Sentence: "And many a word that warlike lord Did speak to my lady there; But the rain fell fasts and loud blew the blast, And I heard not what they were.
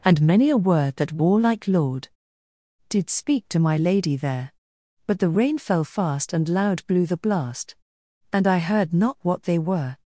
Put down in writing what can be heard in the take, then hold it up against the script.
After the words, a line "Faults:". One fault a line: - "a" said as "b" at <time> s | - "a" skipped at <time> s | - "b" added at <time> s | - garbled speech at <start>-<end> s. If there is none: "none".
"And many a word that warlike lord Did speak to my lady there; But the rain fell fast and loud blew the blast, And I heard not what they were.
Faults:
- "fasts" said as "fast" at 5.8 s